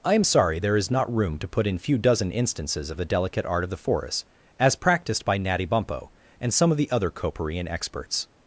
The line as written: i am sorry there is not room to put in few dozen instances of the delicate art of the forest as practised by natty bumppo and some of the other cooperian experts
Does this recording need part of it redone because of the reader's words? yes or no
no